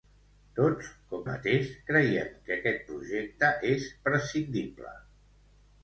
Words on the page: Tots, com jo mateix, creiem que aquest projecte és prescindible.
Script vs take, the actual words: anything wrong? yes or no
yes